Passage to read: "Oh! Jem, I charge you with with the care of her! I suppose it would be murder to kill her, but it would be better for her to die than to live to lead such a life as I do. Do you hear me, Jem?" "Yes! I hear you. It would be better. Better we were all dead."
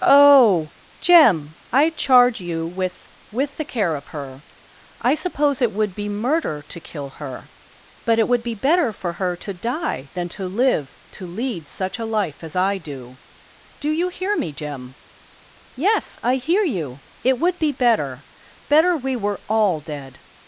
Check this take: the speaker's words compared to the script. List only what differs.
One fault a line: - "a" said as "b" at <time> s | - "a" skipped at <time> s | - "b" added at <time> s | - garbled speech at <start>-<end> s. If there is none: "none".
none